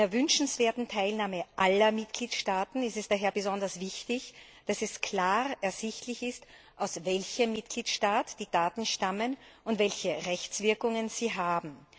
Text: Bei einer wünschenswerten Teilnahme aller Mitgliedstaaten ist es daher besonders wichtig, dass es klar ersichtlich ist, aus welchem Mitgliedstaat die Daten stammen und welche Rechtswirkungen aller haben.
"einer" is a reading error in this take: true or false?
false